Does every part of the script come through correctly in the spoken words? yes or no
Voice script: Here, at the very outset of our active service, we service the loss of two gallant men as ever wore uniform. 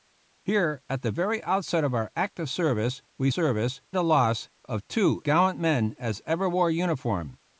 yes